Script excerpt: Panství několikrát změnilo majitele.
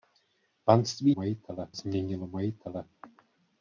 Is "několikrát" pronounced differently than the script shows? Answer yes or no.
yes